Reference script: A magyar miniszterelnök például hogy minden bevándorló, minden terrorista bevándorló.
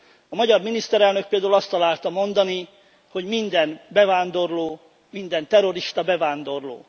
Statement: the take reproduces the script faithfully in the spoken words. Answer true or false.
false